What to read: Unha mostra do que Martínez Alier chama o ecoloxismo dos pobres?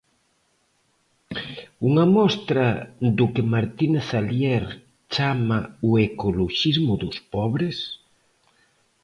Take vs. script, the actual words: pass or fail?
pass